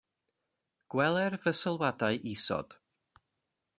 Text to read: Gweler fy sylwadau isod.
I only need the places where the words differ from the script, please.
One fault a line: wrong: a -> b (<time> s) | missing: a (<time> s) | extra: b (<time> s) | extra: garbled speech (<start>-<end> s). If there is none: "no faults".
no faults